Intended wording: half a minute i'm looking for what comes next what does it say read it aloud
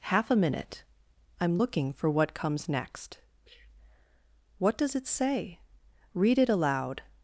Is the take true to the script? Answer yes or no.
yes